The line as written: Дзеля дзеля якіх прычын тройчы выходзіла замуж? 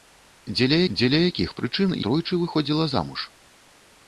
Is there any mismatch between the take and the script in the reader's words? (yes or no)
no